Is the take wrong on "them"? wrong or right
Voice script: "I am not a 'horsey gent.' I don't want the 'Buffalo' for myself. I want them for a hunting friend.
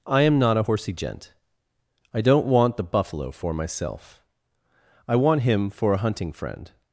wrong